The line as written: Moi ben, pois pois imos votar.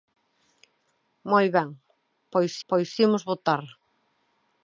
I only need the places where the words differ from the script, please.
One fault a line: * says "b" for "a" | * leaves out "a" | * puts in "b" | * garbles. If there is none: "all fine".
all fine